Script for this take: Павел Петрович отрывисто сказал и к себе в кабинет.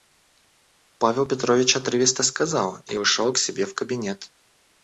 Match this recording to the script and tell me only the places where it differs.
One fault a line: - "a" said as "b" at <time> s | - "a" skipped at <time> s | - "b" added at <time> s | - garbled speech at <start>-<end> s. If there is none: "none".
- "ушел" added at 3.0 s